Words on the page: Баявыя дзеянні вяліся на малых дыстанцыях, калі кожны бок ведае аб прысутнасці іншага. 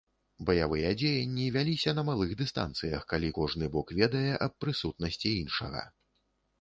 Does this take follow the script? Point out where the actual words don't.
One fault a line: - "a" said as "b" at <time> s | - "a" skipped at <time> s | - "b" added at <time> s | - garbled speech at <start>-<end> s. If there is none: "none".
none